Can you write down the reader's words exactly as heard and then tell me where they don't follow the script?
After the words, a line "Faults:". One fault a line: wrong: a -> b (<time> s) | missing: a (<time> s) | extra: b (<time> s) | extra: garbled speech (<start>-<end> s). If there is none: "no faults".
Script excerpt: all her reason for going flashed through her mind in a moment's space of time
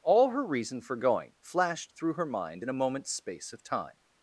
all her reason for going flashed through her mind in a moment's space of time
Faults:
no faults